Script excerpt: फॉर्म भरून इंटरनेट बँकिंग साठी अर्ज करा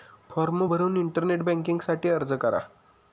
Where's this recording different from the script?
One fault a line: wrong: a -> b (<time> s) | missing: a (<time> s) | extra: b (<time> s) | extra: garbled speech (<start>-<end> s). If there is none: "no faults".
no faults